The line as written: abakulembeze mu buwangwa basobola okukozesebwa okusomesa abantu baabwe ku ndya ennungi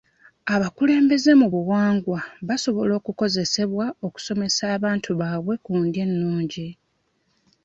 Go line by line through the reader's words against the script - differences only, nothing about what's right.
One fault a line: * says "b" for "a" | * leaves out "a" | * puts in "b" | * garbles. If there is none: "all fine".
all fine